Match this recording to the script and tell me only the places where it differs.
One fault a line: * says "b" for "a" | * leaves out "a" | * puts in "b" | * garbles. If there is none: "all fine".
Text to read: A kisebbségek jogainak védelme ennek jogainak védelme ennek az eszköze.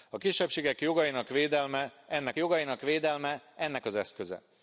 all fine